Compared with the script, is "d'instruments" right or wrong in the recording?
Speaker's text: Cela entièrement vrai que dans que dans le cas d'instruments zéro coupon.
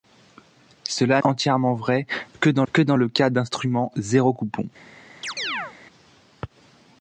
right